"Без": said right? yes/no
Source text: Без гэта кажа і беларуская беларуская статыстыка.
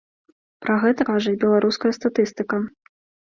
no